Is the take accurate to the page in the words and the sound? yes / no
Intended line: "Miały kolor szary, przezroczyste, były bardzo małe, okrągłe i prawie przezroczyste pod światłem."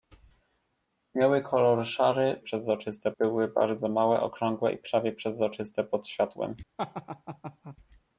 no